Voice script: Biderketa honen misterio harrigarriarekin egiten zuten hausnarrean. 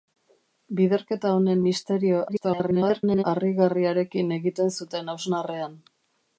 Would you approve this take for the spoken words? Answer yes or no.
no